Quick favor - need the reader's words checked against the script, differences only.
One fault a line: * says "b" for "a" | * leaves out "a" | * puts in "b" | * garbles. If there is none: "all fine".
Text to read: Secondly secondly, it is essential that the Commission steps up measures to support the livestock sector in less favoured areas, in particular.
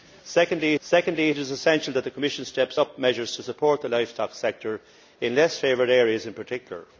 all fine